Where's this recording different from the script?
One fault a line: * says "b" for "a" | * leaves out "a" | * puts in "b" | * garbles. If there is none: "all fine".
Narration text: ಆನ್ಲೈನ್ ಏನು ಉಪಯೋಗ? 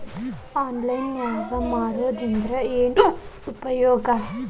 * puts in "ನಾಗ್ ಮಾರೋದ್ರಿಂದ"